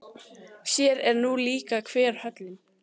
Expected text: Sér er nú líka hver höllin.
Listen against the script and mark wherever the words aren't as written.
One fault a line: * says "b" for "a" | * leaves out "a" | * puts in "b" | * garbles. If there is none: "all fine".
all fine